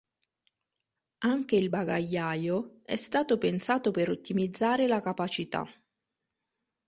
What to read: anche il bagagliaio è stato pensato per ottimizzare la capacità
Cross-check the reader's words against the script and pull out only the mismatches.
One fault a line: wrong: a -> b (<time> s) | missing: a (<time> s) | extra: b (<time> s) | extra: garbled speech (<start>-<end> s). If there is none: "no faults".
no faults